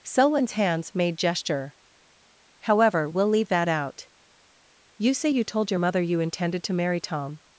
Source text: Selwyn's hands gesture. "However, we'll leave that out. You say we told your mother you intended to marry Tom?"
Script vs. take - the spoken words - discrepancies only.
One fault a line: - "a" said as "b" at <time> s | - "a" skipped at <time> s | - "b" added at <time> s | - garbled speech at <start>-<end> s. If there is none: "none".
- "made" added at 0.9 s
- "we" said as "you" at 5.3 s